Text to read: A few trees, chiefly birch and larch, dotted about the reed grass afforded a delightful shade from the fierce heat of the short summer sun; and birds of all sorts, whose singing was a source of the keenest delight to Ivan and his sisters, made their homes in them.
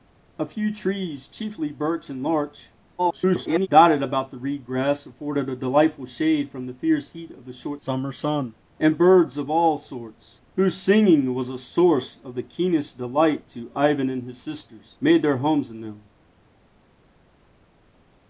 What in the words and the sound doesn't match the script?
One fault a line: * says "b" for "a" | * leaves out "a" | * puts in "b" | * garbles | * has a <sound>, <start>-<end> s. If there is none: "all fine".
* garbles